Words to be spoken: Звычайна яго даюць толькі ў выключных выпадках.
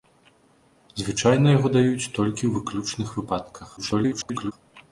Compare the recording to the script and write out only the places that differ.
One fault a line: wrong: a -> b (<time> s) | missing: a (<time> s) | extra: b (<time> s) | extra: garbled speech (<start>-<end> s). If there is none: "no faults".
extra: garbled speech (3.8-4.5 s)